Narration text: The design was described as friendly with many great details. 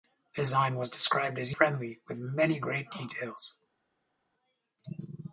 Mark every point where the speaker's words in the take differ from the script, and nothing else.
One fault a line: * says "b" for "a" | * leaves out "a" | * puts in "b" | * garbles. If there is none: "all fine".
all fine